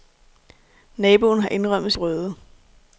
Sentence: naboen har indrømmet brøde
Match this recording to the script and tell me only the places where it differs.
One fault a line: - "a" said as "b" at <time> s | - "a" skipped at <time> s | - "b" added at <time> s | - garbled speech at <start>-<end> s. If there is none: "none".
none